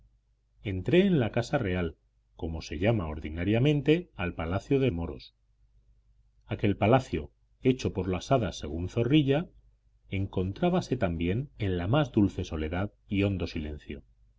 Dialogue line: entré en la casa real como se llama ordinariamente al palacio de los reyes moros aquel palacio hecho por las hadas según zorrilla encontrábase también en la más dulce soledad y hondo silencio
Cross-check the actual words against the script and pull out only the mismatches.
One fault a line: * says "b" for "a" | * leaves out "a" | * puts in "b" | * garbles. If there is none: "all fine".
* leaves out "los reyes"